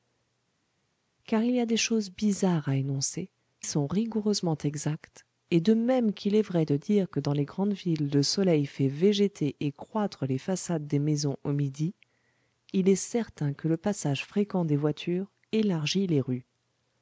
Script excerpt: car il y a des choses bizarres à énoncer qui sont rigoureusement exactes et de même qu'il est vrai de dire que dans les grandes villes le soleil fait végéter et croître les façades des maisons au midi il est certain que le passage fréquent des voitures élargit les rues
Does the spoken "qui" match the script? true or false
false